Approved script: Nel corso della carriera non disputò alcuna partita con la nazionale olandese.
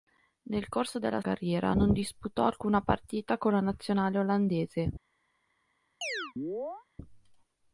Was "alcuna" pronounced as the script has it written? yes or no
yes